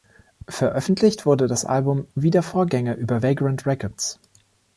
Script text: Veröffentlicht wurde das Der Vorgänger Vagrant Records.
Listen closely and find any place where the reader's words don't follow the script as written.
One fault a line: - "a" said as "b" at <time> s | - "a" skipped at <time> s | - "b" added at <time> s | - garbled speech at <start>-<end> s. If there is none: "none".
- "Album wie" added at 1.6 s
- "über" added at 3.0 s